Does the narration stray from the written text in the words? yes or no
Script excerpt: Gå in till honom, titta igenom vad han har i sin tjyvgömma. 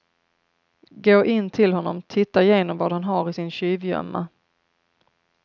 no